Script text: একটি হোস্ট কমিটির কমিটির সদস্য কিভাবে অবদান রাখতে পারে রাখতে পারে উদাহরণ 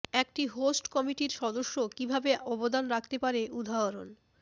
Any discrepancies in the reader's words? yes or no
yes